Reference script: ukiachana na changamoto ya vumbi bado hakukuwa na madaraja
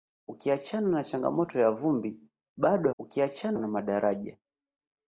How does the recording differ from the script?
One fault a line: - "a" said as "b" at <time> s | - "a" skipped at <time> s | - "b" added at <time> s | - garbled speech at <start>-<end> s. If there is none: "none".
- "hakukuwa" said as "ukiachana" at 3.0 s